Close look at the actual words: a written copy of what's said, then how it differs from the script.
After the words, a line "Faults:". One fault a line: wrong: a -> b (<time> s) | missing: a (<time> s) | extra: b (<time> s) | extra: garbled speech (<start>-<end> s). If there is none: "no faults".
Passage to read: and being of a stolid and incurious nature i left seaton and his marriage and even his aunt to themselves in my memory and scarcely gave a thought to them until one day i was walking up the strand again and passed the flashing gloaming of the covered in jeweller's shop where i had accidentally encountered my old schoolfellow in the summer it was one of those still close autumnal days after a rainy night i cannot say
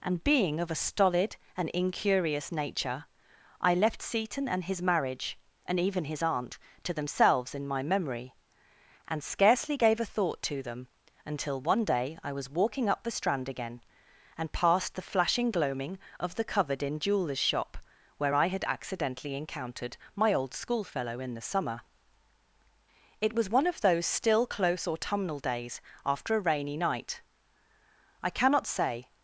and being of a stolid and incurious nature i left seaton and his marriage and even his aunt to themselves in my memory and scarcely gave a thought to them until one day i was walking up the strand again and passed the flashing gloaming of the covered in jeweller's shop where i had accidentally encountered my old schoolfellow in the summer it was one of those still close autumnal days after a rainy night i cannot say
Faults:
no faults